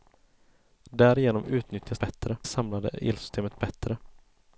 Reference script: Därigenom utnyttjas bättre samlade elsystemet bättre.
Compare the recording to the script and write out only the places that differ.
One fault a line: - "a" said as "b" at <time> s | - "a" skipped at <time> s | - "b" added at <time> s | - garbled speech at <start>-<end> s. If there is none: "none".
none